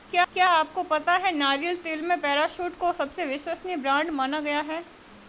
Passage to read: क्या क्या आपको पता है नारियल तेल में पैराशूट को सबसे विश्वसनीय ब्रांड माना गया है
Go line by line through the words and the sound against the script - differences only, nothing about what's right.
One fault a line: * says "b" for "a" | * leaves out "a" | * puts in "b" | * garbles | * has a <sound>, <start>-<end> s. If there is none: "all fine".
all fine